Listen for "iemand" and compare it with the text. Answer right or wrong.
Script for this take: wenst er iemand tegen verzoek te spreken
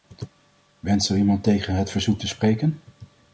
right